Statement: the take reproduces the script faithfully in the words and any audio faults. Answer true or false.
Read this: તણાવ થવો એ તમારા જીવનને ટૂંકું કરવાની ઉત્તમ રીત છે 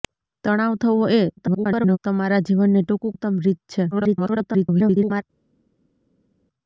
false